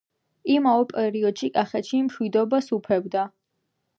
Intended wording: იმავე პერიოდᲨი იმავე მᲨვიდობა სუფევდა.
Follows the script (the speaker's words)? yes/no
no